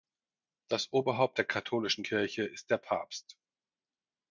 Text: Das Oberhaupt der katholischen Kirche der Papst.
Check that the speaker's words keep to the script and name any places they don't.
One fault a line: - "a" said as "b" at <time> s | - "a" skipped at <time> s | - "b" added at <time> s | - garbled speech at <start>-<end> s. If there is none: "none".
- "ist" added at 2.4 s